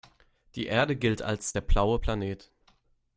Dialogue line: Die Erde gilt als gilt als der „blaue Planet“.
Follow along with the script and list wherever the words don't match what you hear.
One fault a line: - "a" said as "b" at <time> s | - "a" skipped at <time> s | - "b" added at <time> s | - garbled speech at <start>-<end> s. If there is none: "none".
- "gilt als" skipped at 1.5 s